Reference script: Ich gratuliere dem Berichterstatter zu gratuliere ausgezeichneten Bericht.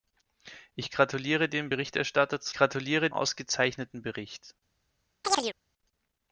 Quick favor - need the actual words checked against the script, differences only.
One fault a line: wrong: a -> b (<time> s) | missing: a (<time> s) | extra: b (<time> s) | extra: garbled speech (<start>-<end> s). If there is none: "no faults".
no faults